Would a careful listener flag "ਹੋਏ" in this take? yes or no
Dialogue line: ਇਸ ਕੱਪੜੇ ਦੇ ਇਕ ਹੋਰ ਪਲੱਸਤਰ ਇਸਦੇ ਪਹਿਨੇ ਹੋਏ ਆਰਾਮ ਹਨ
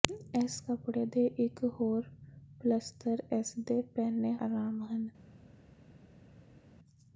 yes